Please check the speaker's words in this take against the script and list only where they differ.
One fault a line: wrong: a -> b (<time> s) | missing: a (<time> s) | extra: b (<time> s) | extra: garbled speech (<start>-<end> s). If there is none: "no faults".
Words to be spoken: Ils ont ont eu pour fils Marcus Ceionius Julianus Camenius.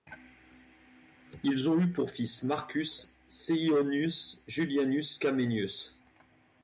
missing: ont (1.8 s)